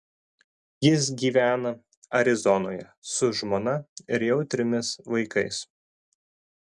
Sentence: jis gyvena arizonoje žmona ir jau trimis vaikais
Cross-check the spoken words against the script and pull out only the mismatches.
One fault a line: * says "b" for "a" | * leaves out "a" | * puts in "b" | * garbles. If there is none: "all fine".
* puts in "su"